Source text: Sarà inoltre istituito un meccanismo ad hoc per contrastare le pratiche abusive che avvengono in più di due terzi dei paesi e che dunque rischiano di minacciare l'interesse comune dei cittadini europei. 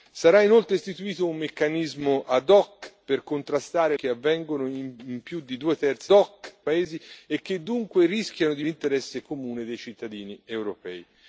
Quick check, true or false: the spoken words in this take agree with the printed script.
false